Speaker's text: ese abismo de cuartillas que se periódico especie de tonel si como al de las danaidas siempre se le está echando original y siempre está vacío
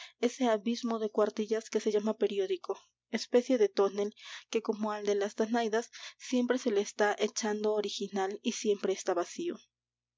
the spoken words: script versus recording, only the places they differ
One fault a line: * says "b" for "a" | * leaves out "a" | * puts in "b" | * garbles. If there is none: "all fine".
* puts in "llama"
* says "que" for "si"